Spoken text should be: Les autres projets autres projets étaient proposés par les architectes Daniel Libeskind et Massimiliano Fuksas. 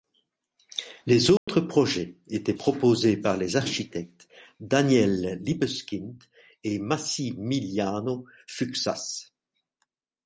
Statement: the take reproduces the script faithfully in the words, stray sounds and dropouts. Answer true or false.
false